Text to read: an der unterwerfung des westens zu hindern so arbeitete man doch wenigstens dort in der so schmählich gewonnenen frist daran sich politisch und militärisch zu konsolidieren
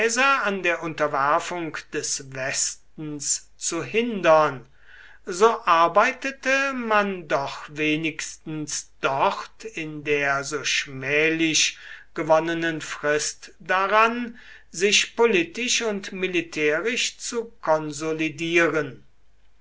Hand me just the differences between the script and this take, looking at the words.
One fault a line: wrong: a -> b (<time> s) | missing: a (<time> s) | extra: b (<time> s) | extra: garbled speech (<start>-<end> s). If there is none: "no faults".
no faults